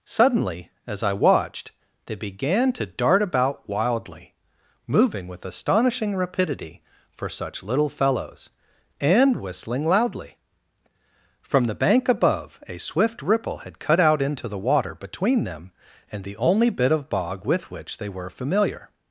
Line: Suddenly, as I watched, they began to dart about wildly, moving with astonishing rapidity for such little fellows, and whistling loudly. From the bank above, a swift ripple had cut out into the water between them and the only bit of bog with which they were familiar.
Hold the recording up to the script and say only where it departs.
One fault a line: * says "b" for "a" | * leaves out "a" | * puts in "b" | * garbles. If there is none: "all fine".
all fine